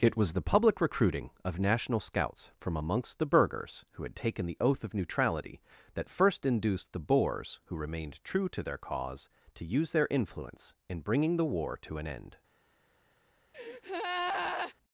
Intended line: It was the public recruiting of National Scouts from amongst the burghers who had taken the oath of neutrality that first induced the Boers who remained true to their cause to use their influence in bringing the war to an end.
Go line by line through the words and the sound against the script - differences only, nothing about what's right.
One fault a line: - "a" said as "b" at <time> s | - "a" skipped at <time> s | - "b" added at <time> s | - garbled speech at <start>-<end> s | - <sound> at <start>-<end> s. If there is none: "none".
- breath at 13.5-14.7 s